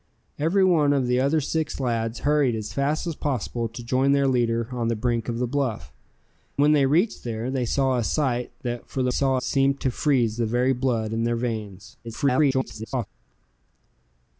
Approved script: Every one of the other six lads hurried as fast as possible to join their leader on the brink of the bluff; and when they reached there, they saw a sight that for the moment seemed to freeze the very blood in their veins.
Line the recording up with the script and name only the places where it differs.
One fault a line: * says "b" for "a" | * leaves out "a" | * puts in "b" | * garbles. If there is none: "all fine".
* leaves out "and"
* says "saw" for "moment"
* garbles